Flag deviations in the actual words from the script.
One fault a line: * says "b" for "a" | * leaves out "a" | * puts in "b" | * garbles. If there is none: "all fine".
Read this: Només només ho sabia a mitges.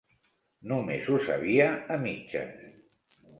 * leaves out "només"